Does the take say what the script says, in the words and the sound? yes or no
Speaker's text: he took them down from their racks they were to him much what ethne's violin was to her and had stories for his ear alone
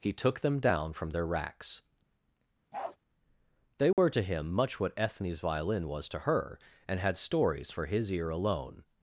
no